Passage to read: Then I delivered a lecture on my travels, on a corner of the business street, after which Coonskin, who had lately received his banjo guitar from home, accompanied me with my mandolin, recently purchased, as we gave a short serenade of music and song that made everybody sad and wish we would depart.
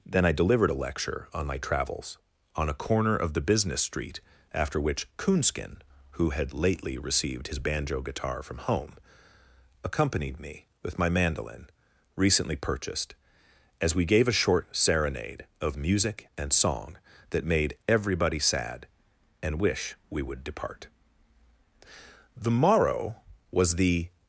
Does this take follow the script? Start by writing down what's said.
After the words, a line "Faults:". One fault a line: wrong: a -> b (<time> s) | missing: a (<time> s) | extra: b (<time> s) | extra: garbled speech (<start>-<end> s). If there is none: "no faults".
Then I delivered a lecture on my travels, on a corner of the business street, after which Coonskin, who had lately received his banjo guitar from home, accompanied me with my mandolin, recently purchased, as we gave a short serenade of music and song that made everybody sad and wish we would depart. The morrow was the
Faults:
extra: The morrow was the (22.4 s)